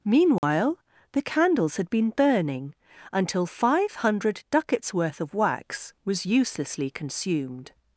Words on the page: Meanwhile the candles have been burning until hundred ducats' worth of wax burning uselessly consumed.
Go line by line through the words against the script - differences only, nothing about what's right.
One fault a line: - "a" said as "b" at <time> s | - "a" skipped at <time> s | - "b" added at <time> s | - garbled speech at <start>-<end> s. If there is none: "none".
- "have" said as "had" at 1.8 s
- "five" added at 3.4 s
- "burning" said as "was" at 6.1 s